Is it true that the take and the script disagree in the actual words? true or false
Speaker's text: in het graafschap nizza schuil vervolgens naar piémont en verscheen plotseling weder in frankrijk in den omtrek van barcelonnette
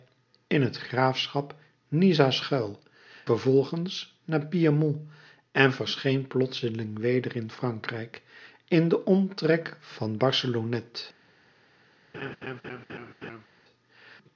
false